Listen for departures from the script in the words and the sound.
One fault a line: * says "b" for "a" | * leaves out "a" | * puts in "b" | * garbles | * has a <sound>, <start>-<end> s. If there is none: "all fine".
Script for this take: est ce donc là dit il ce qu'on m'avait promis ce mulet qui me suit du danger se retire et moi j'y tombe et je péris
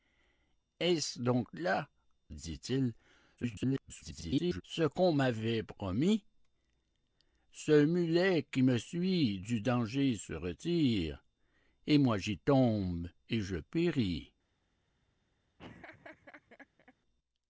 * garbles
* has a laugh, 15.6-16.9 s